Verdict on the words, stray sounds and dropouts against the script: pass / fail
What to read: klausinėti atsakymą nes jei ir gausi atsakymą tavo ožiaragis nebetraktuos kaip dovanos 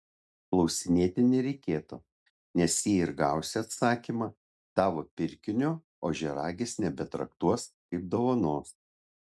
fail